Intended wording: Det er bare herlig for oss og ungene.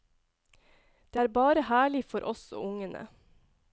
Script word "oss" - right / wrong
right